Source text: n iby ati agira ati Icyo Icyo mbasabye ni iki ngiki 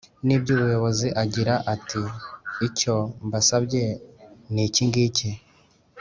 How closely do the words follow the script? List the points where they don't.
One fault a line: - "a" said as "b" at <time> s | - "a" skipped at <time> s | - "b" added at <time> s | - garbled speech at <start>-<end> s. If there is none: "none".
- "ati" said as "ubuyobozi" at 0.5 s
- "Icyo" skipped at 2.9 s